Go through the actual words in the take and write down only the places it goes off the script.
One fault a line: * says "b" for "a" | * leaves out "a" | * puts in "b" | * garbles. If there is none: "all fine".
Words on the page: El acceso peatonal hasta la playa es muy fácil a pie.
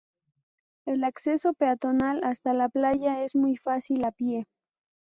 all fine